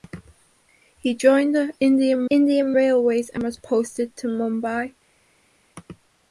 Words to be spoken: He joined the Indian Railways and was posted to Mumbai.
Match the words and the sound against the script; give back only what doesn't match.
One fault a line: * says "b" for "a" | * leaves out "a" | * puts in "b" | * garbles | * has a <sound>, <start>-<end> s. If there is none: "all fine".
* puts in "Indian"